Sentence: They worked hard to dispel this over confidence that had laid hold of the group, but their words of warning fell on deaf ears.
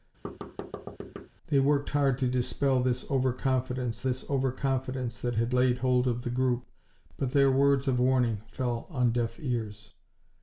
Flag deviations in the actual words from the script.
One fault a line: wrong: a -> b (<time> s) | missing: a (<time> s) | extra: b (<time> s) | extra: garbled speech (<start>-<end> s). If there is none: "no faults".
extra: this over confidence (4.0 s)